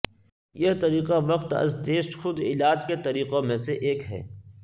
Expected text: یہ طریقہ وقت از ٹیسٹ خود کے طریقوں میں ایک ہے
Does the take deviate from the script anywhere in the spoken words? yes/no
yes